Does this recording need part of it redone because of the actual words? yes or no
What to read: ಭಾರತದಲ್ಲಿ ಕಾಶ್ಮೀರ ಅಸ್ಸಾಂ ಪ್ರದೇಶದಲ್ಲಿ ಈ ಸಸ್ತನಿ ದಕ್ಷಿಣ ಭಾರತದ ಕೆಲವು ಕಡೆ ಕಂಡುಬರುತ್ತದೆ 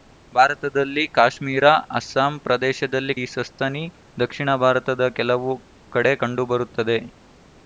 no